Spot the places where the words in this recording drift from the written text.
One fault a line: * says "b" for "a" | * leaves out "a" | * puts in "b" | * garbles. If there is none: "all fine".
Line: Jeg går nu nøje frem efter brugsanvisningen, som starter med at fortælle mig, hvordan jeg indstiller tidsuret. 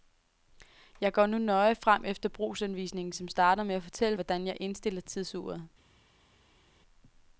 * leaves out "mig"